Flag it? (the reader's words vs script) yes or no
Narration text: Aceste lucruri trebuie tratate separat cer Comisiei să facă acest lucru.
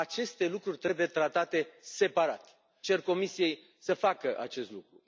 no